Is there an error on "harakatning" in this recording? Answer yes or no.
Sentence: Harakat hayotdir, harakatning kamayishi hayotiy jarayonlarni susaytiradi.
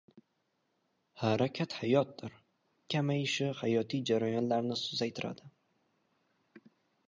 yes